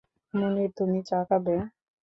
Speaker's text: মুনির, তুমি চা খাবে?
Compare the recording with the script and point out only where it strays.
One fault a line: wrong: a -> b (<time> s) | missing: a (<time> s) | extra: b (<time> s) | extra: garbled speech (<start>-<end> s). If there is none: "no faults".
no faults